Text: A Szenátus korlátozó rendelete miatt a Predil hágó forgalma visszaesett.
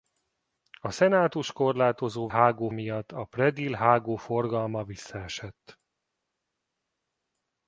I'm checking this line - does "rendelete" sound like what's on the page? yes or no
no